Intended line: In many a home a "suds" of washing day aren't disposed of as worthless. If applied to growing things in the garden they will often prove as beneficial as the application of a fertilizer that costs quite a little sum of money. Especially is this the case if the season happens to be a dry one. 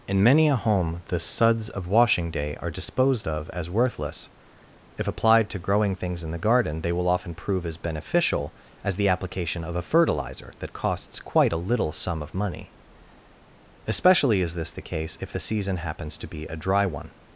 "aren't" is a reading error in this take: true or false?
true